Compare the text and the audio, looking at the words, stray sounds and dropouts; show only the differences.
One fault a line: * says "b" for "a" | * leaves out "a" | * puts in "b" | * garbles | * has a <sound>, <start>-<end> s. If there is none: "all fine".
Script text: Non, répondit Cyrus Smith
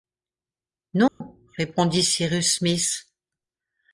* has a dropout, 1.1-1.2 s